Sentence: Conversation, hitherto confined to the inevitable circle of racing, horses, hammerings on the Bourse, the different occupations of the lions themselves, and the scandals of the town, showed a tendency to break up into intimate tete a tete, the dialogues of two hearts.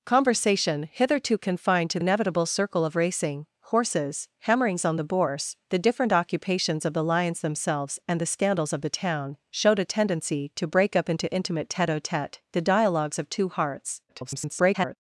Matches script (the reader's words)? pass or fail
fail